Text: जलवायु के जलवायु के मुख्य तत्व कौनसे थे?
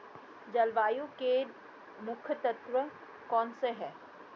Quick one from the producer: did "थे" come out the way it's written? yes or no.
no